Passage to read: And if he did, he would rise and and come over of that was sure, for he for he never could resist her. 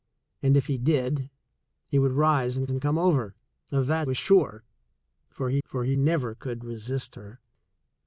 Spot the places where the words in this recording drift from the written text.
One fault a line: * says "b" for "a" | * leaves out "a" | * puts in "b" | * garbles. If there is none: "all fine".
all fine